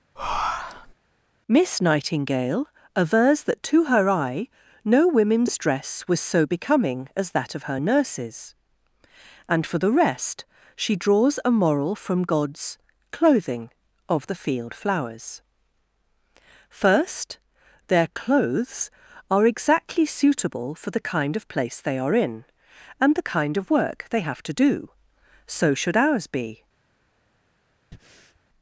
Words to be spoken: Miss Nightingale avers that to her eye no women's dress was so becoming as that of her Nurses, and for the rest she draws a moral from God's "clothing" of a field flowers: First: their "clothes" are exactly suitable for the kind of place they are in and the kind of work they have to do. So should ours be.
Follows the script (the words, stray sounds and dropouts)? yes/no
no